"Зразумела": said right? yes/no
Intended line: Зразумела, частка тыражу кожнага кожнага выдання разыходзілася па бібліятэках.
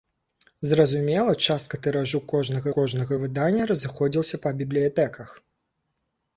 yes